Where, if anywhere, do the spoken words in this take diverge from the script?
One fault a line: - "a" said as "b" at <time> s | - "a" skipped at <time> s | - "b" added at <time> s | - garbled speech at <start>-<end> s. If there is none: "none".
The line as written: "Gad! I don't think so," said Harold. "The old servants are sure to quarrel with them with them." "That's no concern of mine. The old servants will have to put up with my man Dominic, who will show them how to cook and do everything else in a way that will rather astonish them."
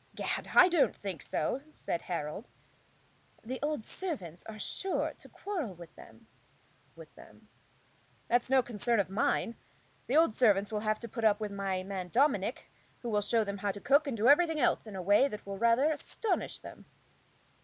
none